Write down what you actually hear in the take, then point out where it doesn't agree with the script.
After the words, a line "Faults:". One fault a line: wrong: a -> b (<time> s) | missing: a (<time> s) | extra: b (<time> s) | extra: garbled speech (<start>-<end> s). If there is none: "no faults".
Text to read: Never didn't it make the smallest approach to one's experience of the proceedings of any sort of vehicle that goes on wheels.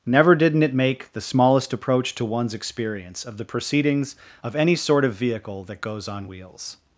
Never didn't it make the smallest approach to one's experience of the proceedings of any sort of vehicle that goes on wheels.
Faults:
no faults